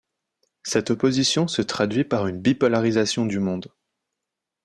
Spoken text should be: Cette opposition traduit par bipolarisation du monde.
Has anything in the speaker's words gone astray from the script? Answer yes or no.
yes